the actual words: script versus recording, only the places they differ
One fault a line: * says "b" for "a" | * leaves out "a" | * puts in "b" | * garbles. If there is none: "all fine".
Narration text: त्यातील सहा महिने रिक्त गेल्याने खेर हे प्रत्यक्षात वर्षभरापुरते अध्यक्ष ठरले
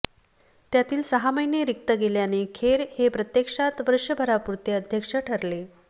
all fine